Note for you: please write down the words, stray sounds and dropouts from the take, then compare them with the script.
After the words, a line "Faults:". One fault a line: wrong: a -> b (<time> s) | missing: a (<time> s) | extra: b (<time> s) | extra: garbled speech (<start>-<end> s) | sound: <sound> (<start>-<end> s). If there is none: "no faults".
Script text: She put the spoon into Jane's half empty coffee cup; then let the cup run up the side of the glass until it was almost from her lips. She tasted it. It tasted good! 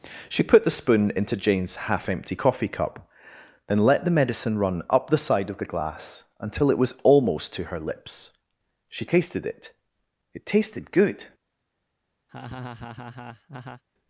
She put the spoon into Jane's half empty coffee cup; then let the medicine run up the side of the glass until it was almost to her lips. She tasted it. It tasted good!
Faults:
wrong: cup -> medicine (4.1 s)
wrong: from -> to (7.5 s)
sound: laugh (12.3-13.8 s)